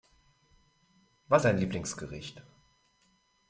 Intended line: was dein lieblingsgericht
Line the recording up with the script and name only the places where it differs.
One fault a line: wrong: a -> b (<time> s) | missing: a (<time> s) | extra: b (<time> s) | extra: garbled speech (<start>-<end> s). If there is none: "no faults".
no faults